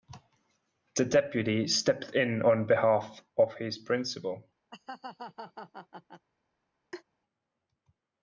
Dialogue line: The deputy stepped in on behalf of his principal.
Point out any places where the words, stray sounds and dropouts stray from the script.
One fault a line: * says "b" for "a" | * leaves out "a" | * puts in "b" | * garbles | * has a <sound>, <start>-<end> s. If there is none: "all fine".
* has a laugh, 4.7-6.3 s
* has a laugh, 6.9-7.0 s